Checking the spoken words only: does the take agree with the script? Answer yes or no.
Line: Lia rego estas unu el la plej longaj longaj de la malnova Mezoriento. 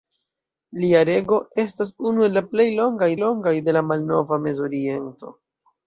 yes